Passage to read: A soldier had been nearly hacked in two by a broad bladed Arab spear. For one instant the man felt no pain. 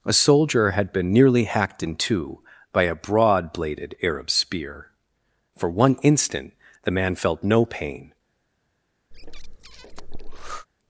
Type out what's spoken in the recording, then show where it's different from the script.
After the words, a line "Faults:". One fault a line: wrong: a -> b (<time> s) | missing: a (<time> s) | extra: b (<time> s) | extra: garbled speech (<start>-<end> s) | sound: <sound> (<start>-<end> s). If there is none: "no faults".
A soldier had been nearly hacked in two by a broad bladed Arab spear. For one instant the man felt no pain.
Faults:
sound: breath (9.1-10.7 s)